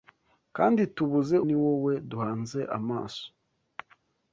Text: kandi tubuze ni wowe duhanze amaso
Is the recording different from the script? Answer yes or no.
no